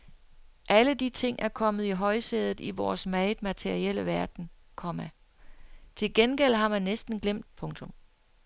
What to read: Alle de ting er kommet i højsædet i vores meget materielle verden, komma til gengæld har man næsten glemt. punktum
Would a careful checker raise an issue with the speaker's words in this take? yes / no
no